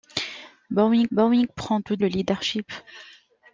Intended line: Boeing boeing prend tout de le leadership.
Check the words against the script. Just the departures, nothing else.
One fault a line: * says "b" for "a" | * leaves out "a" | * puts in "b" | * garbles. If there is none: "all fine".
all fine